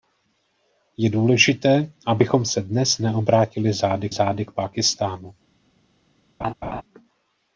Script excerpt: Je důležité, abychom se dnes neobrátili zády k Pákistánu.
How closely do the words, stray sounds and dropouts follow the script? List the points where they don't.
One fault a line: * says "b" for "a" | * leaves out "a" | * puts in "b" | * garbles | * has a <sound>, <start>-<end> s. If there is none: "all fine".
* puts in "zády"
* has a laugh, 6.4-6.8 s